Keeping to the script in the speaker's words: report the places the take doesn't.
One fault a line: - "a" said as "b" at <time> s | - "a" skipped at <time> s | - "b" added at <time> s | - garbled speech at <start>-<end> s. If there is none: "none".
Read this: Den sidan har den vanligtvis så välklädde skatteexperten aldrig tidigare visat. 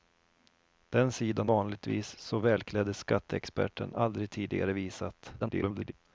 - "har den" skipped at 1.5 s
- garbled speech at 5.4-5.9 s